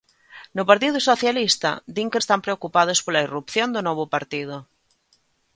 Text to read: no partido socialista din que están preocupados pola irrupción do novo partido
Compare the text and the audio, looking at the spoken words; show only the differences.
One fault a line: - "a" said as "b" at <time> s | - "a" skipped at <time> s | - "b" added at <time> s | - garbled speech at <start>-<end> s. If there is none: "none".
none